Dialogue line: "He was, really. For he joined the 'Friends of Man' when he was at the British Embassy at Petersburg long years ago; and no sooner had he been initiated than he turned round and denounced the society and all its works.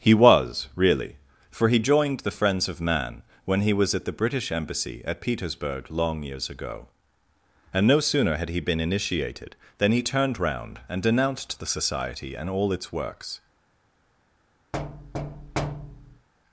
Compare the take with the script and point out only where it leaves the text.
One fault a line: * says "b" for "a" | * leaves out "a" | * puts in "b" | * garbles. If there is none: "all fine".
all fine